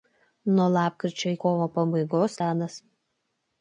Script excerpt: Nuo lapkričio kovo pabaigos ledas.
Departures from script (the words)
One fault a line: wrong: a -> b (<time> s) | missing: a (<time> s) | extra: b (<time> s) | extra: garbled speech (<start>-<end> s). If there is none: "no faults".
no faults